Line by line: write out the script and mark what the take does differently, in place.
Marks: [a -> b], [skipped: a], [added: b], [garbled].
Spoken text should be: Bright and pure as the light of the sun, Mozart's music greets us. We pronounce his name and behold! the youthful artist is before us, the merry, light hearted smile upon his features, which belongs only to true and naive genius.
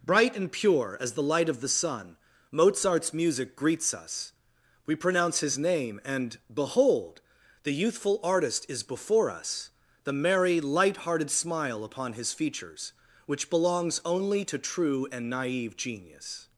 Bright and pure as the light of the sun, Mozart's music greets us. We pronounce his name and behold! the youthful artist is before us, the merry, light hearted smile upon his features, which belongs only to true and naive genius.